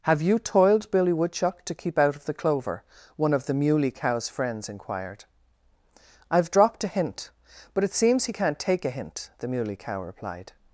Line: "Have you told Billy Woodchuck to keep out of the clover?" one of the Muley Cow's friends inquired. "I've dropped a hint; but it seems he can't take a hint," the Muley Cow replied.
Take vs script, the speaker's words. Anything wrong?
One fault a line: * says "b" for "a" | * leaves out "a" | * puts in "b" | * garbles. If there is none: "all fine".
* says "toiled" for "told"